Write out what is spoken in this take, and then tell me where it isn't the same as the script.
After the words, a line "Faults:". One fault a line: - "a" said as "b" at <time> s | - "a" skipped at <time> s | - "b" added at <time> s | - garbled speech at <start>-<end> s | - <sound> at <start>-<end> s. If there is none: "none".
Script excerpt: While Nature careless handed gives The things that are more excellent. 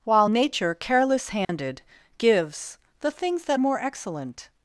While Nature careless handed gives The things that more excellent.
Faults:
- dropout at 1.4-1.5 s
- "are" skipped at 3.6 s